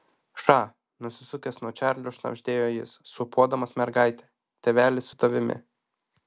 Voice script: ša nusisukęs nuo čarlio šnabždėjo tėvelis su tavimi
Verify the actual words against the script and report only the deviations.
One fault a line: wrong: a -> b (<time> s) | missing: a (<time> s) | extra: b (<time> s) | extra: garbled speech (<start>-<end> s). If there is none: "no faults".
extra: jis sūpuodamas mergaitę (2.8 s)